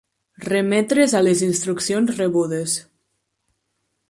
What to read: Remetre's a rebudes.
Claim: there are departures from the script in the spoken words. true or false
true